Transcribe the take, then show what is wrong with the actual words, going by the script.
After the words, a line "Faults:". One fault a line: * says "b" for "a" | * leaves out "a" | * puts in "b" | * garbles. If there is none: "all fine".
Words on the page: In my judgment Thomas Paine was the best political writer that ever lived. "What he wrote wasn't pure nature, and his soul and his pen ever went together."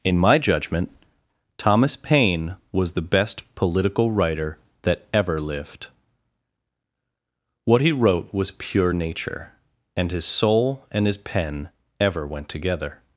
In my judgment Thomas Paine was the best political writer that ever lived. "What he wrote was pure nature, and his soul and his pen ever went together."
Faults:
* says "was" for "wasn't"